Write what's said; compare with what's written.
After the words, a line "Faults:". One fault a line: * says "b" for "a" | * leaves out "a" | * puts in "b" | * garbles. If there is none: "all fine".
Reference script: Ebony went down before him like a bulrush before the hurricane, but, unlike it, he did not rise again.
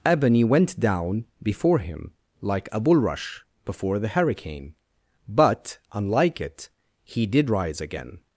Ebony went down before him like a bulrush before the hurricane, but, unlike it, he did rise again.
Faults:
* leaves out "not"